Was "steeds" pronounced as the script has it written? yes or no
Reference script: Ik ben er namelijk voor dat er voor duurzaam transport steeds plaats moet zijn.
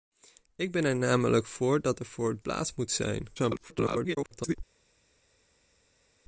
no